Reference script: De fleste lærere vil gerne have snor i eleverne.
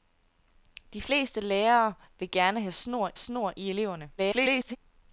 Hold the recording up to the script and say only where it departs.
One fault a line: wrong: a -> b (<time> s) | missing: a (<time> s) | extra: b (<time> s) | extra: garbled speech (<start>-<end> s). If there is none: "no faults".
extra: snor (3.1 s)
extra: garbled speech (4.2-4.8 s)